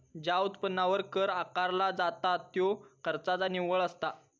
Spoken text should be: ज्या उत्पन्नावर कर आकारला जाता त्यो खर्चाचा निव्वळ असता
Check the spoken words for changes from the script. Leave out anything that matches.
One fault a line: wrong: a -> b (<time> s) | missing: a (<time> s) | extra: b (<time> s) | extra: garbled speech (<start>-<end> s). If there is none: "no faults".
no faults